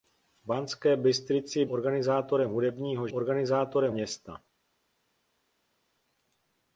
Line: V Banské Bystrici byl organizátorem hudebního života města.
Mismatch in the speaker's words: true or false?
true